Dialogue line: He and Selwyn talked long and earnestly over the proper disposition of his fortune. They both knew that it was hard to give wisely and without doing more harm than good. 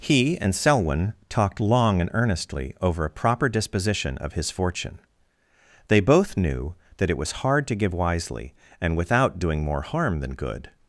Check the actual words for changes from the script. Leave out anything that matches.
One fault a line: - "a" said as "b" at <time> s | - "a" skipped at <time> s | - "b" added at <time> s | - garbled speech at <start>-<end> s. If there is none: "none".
- "the" said as "a" at 3.0 s